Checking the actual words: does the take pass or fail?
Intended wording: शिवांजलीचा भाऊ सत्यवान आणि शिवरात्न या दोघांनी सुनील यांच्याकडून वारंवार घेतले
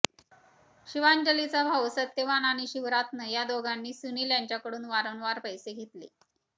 fail